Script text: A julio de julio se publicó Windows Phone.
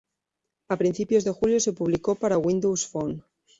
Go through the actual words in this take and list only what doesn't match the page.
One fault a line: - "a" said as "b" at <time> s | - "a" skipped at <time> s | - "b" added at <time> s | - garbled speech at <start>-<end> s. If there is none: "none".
- "julio" said as "principios" at 0.7 s
- "para" added at 2.1 s